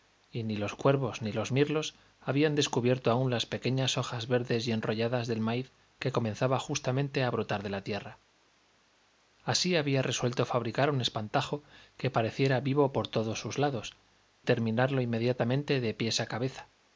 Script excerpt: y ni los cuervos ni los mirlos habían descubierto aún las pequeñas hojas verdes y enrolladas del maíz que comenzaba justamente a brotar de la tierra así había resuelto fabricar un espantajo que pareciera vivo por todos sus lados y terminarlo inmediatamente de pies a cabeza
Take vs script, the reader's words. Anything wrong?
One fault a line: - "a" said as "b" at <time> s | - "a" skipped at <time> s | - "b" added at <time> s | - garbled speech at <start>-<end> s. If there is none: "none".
- "y" skipped at 14.0 s